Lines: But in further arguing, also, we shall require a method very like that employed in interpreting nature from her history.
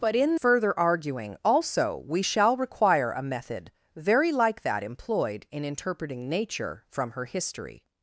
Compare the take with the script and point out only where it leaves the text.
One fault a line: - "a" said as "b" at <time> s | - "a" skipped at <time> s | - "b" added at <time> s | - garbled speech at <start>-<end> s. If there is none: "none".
none